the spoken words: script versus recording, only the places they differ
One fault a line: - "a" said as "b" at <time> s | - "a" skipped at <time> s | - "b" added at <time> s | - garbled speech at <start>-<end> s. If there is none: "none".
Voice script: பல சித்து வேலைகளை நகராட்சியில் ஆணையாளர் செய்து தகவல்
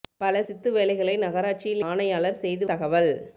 none